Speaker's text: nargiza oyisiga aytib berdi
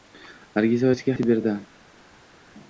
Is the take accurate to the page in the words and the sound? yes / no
yes